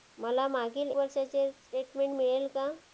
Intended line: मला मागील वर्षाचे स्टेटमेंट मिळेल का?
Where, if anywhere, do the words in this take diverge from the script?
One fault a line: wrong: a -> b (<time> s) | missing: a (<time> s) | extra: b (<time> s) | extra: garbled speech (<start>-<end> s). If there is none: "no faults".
no faults